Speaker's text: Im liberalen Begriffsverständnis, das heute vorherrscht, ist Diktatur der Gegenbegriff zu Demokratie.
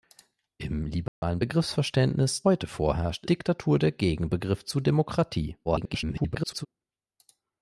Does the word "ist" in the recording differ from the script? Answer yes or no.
yes